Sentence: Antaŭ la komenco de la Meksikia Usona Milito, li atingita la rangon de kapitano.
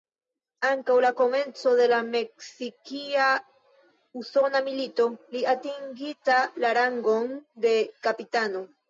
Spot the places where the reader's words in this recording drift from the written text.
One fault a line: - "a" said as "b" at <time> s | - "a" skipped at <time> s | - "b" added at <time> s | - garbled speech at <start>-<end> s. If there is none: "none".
none